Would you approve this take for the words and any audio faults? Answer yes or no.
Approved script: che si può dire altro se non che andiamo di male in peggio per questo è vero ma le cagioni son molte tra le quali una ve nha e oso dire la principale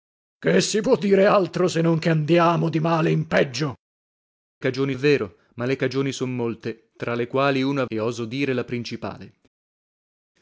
no